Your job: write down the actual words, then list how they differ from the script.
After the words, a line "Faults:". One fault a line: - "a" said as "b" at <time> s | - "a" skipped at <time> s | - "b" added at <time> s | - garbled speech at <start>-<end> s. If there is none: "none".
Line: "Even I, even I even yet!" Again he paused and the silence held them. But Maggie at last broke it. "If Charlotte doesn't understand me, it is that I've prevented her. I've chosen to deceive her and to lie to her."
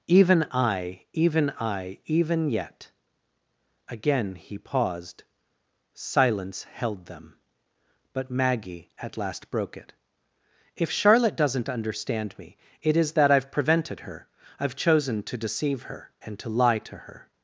"Even I, even I even yet!" Again he paused silence held them. But Maggie at last broke it. "If Charlotte doesn't understand me, it is that I've prevented her. I've chosen to deceive her and to lie to her."
Faults:
- "and the" skipped at 5.2 s